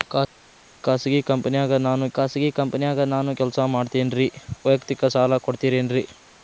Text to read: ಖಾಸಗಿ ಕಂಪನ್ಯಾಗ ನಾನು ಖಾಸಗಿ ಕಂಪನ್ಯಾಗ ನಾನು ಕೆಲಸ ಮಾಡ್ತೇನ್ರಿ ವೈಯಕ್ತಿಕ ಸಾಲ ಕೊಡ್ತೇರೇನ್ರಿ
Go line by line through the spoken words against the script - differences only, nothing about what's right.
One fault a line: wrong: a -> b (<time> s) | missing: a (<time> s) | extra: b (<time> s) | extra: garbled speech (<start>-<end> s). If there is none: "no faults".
no faults